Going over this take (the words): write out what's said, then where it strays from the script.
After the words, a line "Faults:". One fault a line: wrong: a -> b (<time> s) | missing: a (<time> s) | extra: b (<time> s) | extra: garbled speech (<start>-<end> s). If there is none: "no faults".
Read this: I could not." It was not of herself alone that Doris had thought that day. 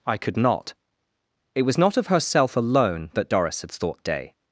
I could not." It was not of herself alone that Doris had thought day.
Faults:
missing: that (4.0 s)